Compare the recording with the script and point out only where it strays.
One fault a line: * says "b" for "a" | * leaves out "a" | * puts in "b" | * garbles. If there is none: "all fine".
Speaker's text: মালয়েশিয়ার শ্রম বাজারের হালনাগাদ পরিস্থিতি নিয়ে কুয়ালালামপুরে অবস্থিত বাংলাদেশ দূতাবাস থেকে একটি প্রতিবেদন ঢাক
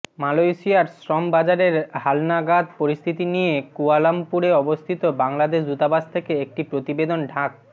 all fine